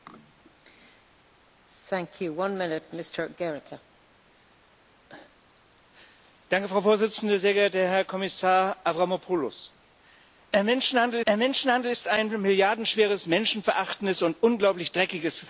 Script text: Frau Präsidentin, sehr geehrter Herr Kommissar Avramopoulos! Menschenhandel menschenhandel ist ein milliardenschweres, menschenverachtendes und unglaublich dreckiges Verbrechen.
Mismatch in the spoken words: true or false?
false